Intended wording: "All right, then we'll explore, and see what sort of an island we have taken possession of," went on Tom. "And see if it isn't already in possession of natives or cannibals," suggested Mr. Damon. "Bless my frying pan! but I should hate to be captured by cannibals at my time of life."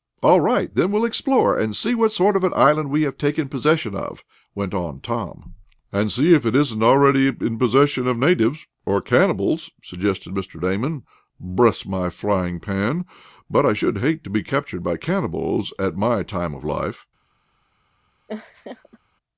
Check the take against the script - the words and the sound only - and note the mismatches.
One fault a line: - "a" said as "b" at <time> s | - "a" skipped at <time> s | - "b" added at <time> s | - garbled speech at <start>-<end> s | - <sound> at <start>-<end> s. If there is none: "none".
- laugh at 18.3-19.0 s